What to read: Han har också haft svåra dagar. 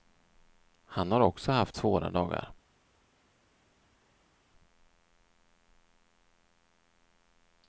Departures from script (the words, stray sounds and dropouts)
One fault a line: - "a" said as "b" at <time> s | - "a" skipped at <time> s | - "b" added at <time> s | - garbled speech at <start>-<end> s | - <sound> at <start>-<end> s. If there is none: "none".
none